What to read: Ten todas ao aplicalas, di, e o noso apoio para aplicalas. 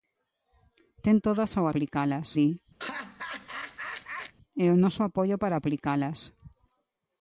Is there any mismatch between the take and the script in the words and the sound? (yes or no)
yes